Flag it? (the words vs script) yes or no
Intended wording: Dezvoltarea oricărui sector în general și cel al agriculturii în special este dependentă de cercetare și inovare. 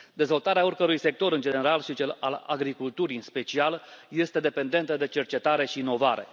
no